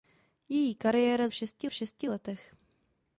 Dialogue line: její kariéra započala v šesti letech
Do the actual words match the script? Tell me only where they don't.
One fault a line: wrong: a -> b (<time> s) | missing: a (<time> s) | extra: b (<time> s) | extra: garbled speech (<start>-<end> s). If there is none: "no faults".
wrong: započala -> šesti (1.3 s)